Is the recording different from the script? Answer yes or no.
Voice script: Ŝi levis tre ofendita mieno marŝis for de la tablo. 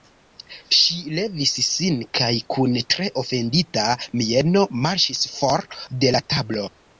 yes